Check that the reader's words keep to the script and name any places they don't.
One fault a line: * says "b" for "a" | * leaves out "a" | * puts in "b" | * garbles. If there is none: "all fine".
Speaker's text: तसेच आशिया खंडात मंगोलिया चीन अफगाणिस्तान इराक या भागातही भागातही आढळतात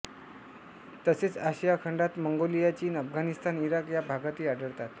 * leaves out "भागातही"